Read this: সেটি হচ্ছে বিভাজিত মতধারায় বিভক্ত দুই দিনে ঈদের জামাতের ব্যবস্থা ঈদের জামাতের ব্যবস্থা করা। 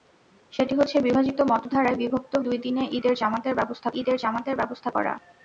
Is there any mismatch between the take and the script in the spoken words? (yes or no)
no